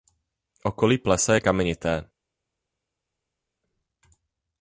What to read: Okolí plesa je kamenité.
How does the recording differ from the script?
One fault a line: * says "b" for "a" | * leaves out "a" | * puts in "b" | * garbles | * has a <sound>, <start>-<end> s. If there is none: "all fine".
all fine